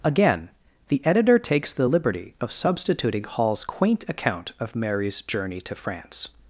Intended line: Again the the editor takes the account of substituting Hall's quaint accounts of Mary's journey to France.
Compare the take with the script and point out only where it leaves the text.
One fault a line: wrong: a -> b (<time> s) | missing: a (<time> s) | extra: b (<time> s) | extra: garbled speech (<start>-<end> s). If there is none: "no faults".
missing: the (1.1 s)
wrong: account -> liberty (1.8 s)
wrong: accounts -> account (4.1 s)